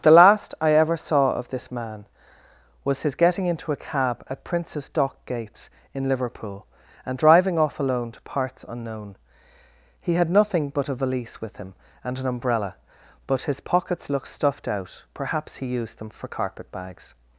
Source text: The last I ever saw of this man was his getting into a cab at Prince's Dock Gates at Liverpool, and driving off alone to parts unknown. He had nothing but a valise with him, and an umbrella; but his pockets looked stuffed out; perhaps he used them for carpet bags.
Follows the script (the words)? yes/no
no